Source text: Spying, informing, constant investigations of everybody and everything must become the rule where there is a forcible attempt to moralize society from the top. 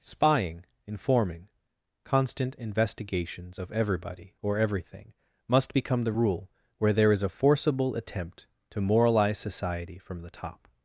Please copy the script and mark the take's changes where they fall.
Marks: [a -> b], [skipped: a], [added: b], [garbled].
Spying, informing, constant investigations of everybody [and -> or] everything must become the rule where there is a forcible attempt to moralize society from the top.